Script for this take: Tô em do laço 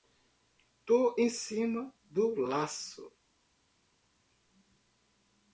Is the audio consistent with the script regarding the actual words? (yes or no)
no